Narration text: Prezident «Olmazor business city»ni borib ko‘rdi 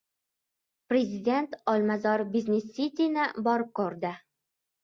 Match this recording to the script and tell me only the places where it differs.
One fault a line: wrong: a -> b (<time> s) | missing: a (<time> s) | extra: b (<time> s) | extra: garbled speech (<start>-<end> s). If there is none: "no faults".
no faults